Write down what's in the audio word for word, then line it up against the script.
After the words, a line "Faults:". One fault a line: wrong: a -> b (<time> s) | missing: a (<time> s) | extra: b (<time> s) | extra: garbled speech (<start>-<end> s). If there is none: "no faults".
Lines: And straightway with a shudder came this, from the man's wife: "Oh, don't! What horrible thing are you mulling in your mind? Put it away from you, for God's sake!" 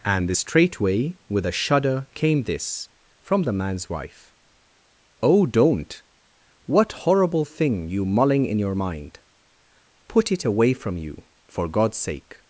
And straightway with a shudder came this, from the man's wife: "Oh, don't! What horrible thing you mulling in your mind? Put it away from you, for God's sake!"
Faults:
missing: are (7.9 s)